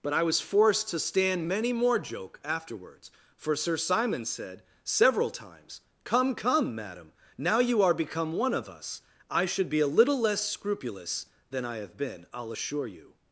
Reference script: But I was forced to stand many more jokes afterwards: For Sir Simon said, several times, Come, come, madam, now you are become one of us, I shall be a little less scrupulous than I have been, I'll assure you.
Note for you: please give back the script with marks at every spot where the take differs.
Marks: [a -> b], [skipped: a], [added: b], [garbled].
But I was forced to stand many more [jokes -> joke] afterwards: For Sir Simon said, several times, Come, come, madam, now you are become one of us, I [shall -> should] be a little less scrupulous than I have been, I'll assure you.